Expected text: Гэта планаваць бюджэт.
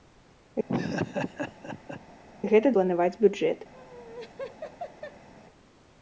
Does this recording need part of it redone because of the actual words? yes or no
no